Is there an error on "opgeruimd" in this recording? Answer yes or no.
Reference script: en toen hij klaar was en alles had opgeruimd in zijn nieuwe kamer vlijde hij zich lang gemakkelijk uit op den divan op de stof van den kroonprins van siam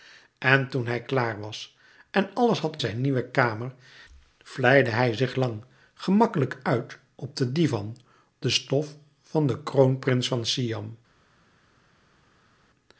yes